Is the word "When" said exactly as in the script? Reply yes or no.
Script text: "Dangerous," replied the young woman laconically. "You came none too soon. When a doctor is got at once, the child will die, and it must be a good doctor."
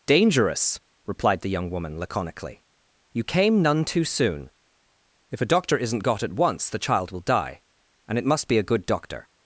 no